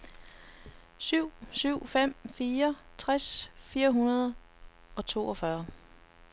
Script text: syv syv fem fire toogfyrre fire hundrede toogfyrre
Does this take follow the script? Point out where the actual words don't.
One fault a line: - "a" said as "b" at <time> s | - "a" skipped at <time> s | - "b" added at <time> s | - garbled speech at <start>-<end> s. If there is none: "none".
- "toogfyrre" said as "tres" at 3.0 s
- "og" added at 5.0 s